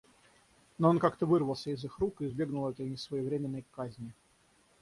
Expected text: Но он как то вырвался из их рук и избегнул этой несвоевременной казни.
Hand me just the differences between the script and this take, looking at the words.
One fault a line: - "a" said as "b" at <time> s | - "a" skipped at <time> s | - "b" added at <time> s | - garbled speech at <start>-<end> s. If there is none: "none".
none